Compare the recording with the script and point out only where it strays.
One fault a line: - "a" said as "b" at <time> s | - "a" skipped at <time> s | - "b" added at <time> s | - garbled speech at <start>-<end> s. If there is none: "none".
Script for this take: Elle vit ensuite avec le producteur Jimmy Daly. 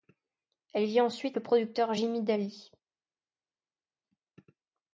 - "avec" skipped at 1.4 s